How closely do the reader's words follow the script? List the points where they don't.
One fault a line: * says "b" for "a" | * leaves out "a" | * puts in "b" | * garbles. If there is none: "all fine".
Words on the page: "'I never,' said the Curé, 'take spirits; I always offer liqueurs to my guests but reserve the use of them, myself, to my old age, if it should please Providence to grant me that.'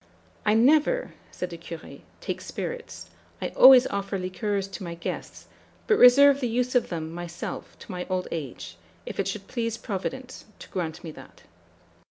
all fine